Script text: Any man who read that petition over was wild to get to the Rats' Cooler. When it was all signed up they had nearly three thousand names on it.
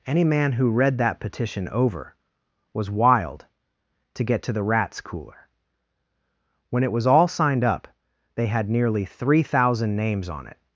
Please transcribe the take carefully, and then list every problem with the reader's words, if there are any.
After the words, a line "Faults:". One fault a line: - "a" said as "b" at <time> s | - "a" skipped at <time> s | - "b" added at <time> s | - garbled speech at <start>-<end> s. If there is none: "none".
Any man who read that petition over was wild to get to the Rats' Cooler. When it was all signed up they had nearly three thousand names on it.
Faults:
none